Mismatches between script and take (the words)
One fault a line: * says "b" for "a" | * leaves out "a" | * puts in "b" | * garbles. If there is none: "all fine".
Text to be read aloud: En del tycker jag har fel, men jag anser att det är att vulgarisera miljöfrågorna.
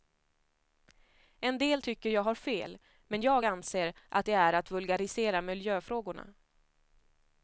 all fine